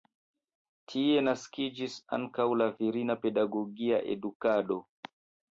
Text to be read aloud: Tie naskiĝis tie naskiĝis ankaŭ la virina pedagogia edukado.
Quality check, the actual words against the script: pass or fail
fail